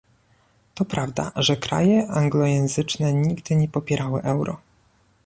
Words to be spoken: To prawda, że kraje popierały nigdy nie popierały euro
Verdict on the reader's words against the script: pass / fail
fail